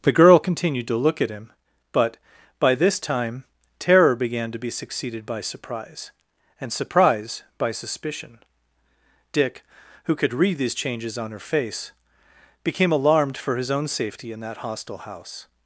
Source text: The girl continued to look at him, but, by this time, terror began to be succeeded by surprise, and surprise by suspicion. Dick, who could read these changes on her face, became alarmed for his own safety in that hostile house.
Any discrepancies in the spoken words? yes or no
no